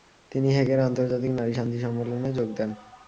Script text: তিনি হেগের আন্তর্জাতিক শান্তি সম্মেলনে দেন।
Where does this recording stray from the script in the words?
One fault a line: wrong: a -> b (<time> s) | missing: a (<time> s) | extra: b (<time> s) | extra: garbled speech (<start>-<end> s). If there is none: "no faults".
extra: নারী (1.3 s)
extra: যোগ (2.3 s)